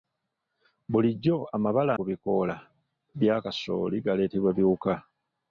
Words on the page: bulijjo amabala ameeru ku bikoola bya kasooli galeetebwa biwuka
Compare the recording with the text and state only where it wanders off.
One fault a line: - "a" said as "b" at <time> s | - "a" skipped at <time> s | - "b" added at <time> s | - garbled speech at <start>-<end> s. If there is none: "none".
- "ameeru" skipped at 1.9 s